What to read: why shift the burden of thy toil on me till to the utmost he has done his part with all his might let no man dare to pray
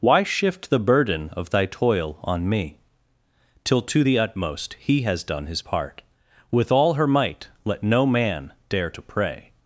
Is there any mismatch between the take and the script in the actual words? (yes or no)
yes